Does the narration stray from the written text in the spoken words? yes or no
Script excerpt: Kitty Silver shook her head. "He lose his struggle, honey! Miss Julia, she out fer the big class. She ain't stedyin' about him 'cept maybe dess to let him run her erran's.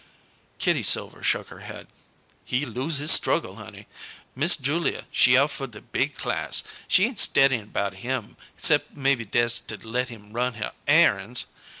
no